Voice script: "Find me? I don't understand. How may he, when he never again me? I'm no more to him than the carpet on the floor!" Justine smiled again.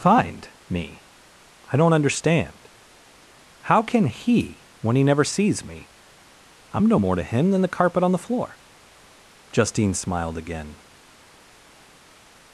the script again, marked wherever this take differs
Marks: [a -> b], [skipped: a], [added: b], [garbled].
"Find me? I don't understand. How [may -> can] he, when he never [again -> sees] me? I'm no more to him than the carpet on the floor!" Justine smiled again.